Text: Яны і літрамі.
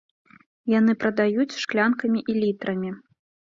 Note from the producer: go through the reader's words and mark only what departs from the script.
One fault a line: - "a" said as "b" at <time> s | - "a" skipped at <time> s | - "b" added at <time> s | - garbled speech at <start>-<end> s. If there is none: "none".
- "прадаюць шклянкамі" added at 1.0 s